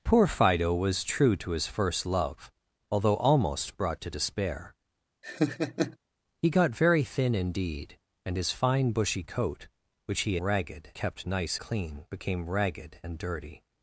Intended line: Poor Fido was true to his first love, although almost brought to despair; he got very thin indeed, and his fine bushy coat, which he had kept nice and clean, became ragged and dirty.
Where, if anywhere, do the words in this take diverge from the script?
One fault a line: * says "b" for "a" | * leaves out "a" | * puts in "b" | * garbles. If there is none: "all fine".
* says "ragged" for "had"
* leaves out "and"